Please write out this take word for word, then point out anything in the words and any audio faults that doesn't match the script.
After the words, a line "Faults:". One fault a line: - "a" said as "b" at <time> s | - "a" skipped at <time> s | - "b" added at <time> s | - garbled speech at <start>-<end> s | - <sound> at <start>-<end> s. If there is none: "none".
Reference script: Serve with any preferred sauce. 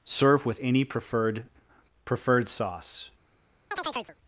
Serve with any preferred preferred sauce.
Faults:
- "preferred" added at 2.0 s
- chirp at 3.7-4.2 s